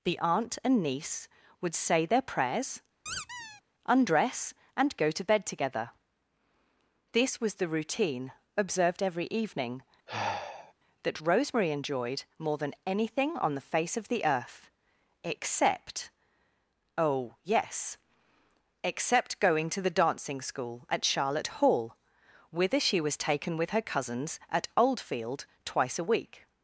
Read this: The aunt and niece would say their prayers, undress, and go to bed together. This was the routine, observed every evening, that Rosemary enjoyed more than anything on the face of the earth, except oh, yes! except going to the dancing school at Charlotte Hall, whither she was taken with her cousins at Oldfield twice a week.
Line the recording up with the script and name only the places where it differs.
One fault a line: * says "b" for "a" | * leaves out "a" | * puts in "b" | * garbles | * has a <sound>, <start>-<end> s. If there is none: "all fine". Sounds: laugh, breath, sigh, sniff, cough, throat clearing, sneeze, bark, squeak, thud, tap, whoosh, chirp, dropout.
* has a squeak, 3.1-3.6 s
* has a sigh, 10.1-10.7 s